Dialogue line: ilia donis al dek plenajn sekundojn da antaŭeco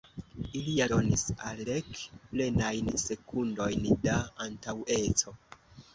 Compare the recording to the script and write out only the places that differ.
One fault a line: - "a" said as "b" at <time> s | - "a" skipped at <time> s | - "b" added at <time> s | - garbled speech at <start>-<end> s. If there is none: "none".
none